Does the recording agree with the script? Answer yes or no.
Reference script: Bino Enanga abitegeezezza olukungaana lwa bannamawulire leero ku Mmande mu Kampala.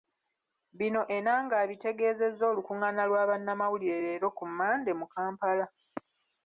yes